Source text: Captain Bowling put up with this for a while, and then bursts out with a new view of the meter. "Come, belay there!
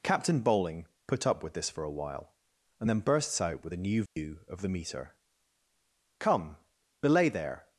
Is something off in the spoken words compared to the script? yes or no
no